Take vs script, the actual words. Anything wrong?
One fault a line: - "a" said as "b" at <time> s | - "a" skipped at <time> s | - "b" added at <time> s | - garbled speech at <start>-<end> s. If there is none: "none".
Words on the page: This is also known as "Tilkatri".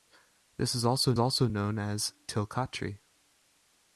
- "also" added at 1.2 s